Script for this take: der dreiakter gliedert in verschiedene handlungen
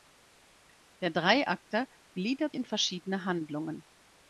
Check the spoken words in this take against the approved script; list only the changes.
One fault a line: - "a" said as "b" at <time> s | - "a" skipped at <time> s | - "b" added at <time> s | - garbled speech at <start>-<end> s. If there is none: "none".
none